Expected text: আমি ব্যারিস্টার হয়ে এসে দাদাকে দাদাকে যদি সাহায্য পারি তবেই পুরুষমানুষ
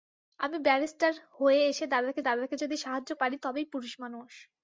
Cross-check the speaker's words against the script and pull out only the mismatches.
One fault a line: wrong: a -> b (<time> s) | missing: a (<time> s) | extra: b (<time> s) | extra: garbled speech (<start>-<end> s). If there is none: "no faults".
no faults